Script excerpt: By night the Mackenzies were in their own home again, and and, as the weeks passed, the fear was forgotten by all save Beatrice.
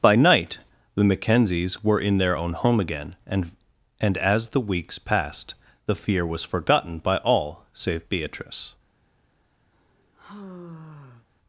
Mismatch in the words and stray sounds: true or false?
true